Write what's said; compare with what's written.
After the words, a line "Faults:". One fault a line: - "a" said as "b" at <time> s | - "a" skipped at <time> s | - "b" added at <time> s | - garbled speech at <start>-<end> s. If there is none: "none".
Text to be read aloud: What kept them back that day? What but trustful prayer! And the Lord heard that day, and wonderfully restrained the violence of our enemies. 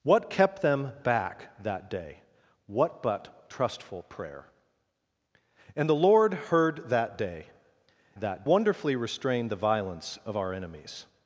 What kept them back that day? What but trustful prayer! And the Lord heard that day, that wonderfully restrained the violence of our enemies.
Faults:
- "and" said as "that" at 8.2 s